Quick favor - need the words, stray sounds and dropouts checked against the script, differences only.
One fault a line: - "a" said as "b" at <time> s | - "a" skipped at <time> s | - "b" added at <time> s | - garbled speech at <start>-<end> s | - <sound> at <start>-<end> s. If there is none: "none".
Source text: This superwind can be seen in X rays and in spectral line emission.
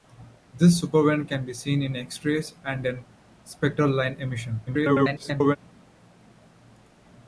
- garbled speech at 4.7-5.6 s